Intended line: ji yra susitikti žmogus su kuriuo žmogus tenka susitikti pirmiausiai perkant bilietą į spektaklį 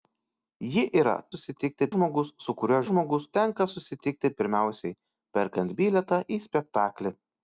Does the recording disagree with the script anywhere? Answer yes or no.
no